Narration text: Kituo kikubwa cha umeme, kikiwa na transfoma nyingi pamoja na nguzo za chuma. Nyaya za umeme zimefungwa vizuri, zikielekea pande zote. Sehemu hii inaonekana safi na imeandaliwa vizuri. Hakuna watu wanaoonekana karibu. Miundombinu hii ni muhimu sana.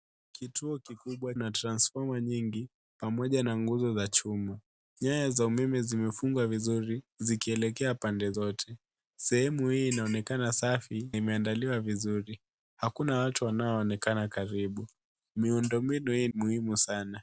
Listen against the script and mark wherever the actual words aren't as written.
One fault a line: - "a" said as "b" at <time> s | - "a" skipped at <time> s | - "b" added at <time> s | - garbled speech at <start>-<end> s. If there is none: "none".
- "cha umeme kikiwa" skipped at 1.4 s
- "na" skipped at 11.1 s
- "ni" skipped at 16.3 s